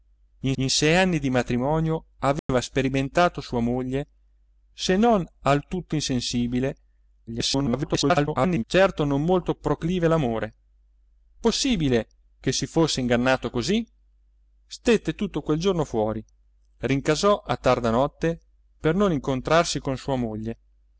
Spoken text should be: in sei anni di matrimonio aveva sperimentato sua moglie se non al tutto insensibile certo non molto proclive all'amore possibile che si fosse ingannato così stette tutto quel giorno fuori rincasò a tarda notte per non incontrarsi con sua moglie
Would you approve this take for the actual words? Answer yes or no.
no